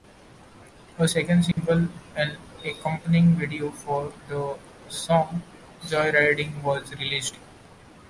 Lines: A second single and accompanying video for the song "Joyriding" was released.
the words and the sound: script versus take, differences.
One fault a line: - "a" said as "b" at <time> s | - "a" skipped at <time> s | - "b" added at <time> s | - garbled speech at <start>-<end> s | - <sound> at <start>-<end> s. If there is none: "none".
- dropout at 1.5-1.6 s